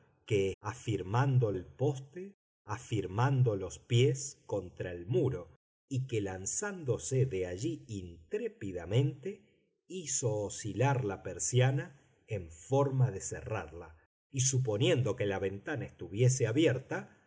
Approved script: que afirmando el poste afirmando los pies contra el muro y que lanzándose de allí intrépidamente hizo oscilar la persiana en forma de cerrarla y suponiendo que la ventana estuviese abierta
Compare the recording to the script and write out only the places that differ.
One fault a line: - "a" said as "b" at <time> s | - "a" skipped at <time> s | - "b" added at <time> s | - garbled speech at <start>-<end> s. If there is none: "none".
none